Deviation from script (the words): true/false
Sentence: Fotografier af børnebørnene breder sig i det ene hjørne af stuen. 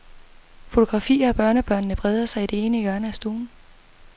false